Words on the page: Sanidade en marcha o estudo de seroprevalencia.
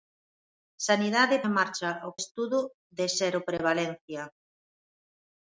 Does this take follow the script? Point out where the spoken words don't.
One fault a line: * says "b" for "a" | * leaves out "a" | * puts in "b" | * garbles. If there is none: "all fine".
all fine